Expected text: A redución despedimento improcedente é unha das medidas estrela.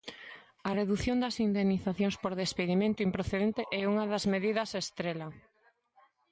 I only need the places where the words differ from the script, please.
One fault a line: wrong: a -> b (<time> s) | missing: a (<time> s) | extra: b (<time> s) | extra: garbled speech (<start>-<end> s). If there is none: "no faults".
extra: das indemnizacións por (1.2 s)